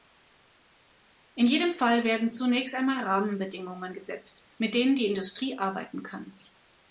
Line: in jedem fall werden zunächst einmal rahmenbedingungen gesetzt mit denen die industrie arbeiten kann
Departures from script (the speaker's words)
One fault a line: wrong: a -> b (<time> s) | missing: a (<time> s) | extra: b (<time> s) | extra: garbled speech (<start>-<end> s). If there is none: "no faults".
no faults